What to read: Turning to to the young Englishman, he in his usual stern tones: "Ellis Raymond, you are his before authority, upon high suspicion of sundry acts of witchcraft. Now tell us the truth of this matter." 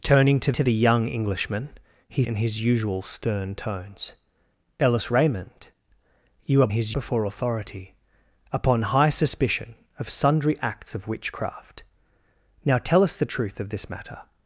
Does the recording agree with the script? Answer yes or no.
yes